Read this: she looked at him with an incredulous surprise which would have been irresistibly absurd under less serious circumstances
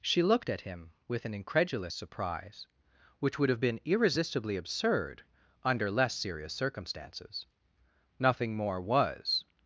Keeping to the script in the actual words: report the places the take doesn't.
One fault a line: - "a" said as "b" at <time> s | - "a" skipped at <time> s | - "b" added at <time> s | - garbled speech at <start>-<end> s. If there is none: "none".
- "nothing more was" added at 8.2 s